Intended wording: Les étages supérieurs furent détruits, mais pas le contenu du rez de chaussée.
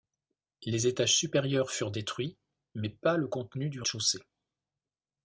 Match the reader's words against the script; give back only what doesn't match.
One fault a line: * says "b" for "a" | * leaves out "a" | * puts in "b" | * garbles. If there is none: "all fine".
* leaves out "rez"